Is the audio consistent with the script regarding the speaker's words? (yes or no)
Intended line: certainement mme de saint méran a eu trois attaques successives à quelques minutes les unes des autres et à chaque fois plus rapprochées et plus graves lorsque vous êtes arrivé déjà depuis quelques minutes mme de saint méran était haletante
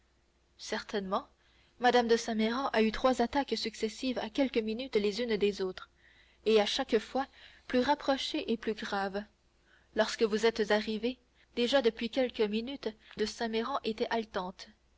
no